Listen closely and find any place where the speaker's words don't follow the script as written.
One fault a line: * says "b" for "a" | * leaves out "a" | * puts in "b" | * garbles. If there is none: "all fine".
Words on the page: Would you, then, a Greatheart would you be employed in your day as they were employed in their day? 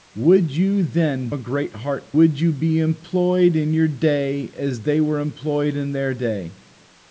all fine